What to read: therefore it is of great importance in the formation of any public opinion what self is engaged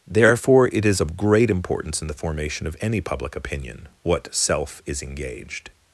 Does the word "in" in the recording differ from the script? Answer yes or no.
no